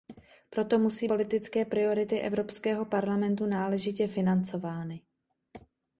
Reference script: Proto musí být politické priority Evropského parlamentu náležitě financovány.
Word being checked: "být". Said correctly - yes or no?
no